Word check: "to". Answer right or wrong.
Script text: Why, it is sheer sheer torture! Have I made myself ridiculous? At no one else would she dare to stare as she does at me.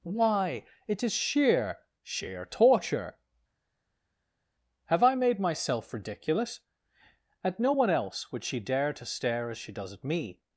right